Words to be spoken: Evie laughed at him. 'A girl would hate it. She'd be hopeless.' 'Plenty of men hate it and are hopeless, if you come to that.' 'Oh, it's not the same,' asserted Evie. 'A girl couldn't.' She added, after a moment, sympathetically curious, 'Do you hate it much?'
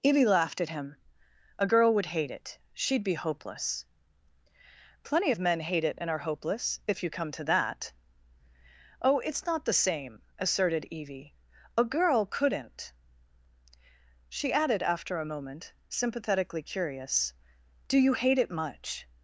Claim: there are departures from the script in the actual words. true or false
false